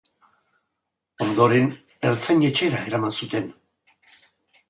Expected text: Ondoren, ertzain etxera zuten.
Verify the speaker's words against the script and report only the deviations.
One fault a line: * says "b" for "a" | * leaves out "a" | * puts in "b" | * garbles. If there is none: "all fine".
* puts in "eraman"